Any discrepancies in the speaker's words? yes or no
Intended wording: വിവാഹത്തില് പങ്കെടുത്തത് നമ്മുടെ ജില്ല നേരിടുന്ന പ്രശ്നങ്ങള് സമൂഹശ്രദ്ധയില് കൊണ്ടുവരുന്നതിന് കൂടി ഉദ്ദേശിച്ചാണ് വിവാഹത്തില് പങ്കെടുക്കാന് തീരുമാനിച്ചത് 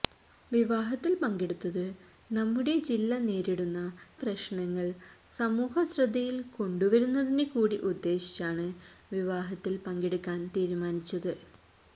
no